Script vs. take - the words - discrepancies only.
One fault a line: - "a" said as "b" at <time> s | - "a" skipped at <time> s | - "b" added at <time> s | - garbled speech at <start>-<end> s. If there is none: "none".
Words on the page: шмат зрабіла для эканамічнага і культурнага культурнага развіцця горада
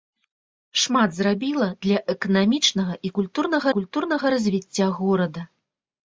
none